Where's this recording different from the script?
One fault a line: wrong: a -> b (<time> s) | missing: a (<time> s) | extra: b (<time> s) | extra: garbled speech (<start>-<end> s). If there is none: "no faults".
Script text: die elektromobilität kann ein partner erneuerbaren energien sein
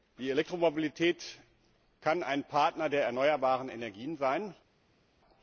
extra: der (2.9 s)